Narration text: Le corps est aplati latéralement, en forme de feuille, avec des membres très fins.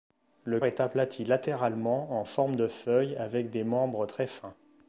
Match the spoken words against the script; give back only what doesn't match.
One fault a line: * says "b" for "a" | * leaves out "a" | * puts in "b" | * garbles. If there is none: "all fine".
* leaves out "corps"